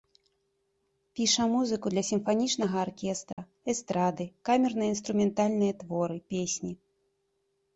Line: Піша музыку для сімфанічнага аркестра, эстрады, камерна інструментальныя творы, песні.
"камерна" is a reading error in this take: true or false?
false